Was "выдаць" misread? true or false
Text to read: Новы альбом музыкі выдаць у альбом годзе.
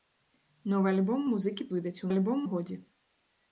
false